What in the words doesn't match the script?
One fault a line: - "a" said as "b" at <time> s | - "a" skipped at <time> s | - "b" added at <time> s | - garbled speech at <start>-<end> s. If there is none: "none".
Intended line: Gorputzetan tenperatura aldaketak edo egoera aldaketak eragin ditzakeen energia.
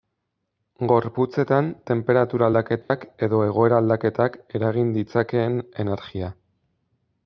none